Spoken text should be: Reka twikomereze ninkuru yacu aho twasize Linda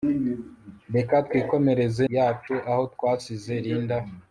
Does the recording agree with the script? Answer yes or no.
no